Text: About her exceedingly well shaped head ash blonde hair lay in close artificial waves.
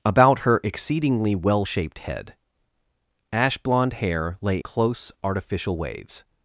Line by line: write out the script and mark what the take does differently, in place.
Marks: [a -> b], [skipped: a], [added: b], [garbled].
About her exceedingly well shaped head ash blonde hair lay [skipped: in] close artificial waves.